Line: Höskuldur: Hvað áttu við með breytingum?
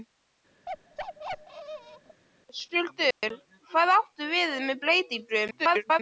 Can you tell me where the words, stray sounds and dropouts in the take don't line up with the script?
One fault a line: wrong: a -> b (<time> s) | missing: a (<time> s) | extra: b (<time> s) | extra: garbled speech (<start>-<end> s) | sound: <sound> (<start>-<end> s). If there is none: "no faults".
sound: bark (0.7-2.2 s)
sound: dropout (3.1-3.2 s)
extra: garbled speech (5.5-6.0 s)